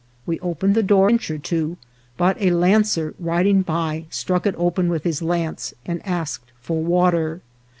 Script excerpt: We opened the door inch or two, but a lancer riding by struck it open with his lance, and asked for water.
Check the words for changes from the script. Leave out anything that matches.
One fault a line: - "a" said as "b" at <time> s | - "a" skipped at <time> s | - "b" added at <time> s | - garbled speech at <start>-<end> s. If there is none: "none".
none